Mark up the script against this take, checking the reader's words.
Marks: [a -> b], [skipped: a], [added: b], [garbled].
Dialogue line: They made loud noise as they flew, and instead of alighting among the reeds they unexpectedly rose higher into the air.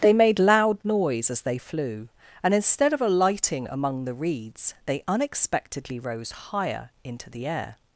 They made loud noise as they flew, and instead of alighting among the reeds they unexpectedly rose higher into the air.